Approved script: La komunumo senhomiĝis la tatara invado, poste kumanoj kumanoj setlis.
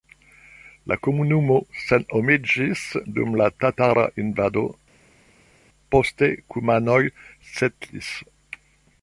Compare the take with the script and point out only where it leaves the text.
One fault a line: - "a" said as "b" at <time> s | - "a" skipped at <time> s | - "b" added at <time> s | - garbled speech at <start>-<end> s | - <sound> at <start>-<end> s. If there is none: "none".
- "dum" added at 3.2 s
- "kumanoj" skipped at 7.0 s